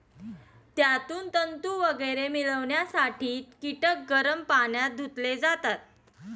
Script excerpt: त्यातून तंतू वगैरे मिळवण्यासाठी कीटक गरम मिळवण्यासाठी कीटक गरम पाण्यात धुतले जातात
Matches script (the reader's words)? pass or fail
fail